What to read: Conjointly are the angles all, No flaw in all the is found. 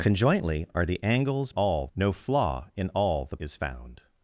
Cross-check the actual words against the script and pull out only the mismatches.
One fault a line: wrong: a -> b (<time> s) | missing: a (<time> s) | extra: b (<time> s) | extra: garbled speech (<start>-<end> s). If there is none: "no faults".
no faults